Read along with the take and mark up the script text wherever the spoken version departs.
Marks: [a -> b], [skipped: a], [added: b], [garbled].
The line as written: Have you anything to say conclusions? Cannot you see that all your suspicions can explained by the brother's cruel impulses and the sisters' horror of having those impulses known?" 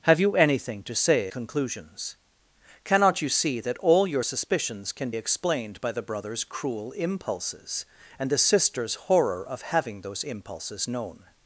Have you anything to say conclusions? Cannot you see that all your suspicions can explained by the brother's cruel impulses and the sisters' horror of having those impulses known?"